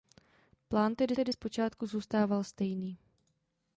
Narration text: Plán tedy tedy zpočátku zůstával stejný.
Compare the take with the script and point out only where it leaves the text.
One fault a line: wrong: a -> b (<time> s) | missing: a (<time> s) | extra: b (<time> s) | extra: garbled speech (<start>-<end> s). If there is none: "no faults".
no faults